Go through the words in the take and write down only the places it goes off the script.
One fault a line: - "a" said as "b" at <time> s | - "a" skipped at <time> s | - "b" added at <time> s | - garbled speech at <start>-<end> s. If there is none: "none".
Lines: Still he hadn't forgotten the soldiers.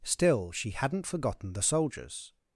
- "he" said as "she" at 0.5 s